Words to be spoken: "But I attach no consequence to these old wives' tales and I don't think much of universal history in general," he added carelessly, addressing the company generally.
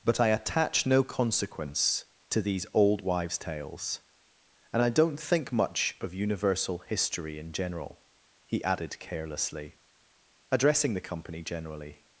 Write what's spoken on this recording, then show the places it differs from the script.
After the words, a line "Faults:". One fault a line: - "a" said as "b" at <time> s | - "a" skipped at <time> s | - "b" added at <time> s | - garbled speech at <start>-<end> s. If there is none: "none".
"But I attach no consequence to these old wives' tales and I don't think much of universal history in general," he added carelessly, addressing the company generally.
Faults:
none